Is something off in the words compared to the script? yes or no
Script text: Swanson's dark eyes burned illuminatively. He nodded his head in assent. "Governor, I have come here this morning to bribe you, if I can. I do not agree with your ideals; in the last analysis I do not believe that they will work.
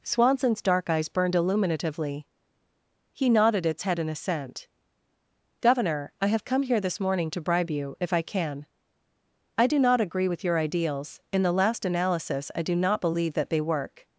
yes